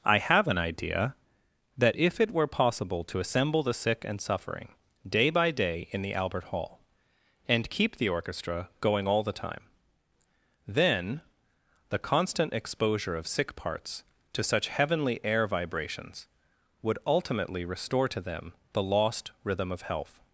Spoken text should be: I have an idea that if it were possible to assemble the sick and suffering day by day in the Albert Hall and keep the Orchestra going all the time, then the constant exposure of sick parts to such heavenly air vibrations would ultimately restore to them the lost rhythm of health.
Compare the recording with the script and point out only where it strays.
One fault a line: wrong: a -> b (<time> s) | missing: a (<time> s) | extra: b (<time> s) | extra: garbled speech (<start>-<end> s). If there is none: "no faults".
no faults